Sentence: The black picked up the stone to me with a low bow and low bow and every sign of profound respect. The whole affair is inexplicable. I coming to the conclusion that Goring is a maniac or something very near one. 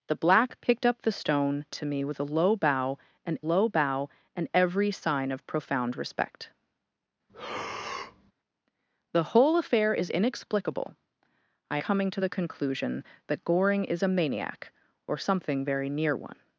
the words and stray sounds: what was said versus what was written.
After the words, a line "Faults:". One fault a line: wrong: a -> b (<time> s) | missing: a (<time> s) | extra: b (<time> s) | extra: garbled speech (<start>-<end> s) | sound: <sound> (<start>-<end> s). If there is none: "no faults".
The black picked up the stone to me with a low bow and low bow and every sign of profound respect. The whole affair is inexplicable. I coming to the conclusion that Goring is a maniac or something very near one.
Faults:
sound: breath (7.3-8.3 s)